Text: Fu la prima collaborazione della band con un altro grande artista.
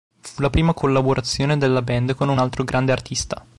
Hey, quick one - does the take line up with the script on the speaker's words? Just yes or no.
yes